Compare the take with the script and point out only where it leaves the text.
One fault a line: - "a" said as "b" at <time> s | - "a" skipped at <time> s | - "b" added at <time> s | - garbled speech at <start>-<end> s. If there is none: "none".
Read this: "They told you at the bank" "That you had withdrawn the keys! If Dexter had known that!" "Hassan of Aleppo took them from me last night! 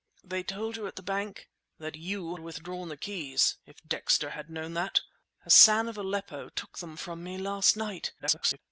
- "had" skipped at 2.4 s
- garbled speech at 8.2-8.6 s